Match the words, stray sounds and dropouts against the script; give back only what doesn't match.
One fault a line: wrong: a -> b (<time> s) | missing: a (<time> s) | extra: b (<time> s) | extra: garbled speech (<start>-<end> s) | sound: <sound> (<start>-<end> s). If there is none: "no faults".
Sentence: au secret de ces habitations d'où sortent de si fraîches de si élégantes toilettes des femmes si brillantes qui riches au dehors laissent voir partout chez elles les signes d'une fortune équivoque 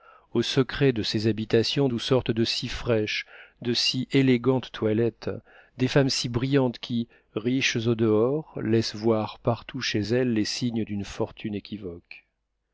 no faults